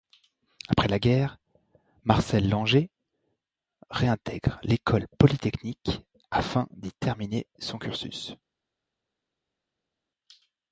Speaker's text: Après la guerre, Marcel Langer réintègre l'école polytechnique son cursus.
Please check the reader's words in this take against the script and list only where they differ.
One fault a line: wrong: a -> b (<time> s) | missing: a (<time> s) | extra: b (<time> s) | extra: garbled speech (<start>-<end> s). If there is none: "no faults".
extra: afin d'y terminer (6.3 s)